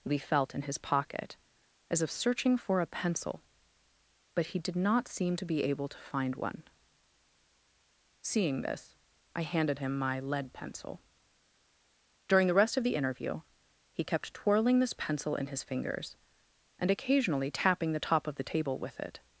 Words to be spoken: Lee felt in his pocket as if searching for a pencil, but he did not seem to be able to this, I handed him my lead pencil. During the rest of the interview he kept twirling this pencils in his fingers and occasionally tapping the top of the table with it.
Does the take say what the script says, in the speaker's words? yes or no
no